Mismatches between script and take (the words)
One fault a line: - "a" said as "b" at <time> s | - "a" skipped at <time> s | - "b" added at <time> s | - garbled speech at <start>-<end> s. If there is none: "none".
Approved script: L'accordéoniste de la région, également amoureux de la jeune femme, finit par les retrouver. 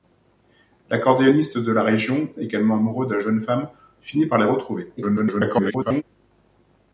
- garbled speech at 5.0-6.0 s